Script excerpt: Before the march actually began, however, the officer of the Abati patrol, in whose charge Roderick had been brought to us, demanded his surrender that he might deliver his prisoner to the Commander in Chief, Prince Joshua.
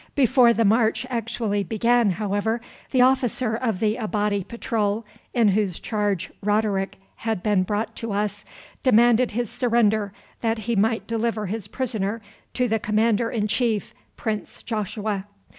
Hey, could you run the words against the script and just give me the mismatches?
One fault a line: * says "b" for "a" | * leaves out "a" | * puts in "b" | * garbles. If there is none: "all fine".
all fine